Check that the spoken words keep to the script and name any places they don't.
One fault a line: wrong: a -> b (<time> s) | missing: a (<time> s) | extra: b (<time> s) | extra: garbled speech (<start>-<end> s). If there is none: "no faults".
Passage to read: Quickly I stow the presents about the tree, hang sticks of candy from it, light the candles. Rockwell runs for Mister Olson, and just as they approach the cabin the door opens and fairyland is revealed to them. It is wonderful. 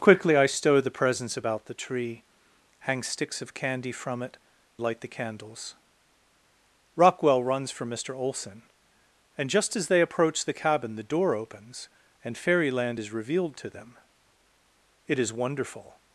no faults